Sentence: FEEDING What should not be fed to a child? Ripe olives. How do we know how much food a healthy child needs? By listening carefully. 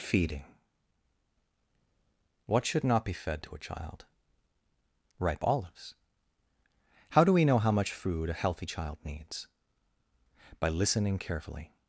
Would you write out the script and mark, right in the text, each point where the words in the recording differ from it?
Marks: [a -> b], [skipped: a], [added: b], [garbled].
FEEDING What should not be fed to a child? Ripe olives. How do we know how much food a healthy child needs? By listening carefully.